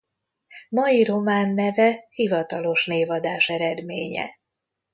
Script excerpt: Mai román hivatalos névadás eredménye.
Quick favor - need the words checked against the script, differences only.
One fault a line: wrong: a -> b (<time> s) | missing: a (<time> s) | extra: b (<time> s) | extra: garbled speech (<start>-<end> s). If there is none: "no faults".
extra: neve (1.5 s)